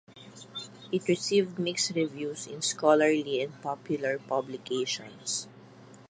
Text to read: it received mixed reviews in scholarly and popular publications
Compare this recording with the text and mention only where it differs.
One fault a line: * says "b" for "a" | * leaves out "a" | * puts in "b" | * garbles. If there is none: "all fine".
all fine